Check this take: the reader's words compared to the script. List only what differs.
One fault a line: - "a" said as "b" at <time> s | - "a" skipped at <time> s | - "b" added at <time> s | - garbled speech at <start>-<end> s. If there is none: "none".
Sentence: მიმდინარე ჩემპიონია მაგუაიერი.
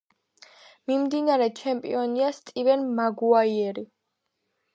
- "სტივენ" added at 2.4 s